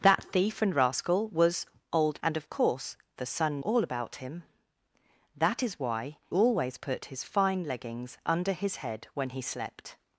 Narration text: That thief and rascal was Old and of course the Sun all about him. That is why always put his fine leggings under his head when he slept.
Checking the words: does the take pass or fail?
pass